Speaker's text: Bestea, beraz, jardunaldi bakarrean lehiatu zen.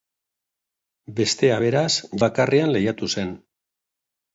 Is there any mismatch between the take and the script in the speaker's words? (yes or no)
yes